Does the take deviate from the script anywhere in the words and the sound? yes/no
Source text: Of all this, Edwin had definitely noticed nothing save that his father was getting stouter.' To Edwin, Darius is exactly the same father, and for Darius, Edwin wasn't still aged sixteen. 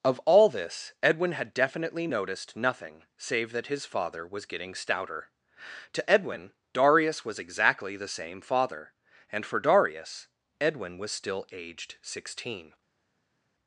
yes